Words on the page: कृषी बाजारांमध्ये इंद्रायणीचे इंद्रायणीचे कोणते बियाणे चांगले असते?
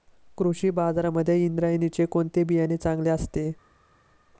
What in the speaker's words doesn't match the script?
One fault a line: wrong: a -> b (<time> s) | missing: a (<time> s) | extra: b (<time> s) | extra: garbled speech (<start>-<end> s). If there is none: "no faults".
missing: इंद्रायणीचे (2.0 s)